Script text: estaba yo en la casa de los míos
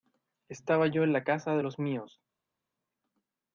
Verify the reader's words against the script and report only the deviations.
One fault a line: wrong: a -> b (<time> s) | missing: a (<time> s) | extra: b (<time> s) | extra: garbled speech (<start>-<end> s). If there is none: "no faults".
no faults